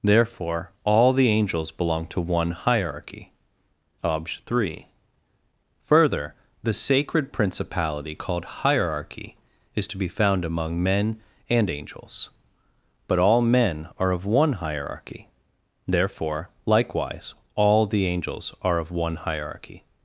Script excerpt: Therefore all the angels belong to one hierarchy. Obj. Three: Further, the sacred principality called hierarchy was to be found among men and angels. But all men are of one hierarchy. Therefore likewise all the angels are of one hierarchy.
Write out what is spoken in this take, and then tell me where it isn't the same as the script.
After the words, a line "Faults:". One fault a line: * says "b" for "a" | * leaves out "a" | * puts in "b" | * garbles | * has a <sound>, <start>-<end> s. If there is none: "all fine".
Therefore all the angels belong to one hierarchy. Obj. Three: Further, the sacred principality called hierarchy is to be found among men and angels. But all men are of one hierarchy. Therefore likewise all the angels are of one hierarchy.
Faults:
* says "is" for "was"